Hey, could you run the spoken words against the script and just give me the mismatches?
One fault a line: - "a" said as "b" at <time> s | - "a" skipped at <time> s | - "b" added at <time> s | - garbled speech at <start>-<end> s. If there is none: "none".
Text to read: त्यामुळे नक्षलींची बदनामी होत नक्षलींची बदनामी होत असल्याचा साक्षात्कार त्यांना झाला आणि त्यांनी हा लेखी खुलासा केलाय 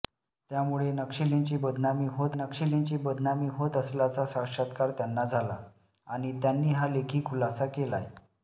none